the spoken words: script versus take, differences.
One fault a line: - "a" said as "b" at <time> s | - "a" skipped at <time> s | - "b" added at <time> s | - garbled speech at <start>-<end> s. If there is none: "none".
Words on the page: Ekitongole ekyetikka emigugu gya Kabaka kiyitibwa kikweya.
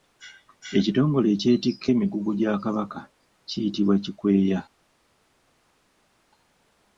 none